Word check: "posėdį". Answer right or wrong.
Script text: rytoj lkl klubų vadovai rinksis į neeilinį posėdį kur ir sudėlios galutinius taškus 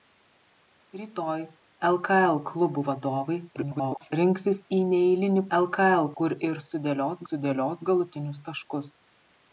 wrong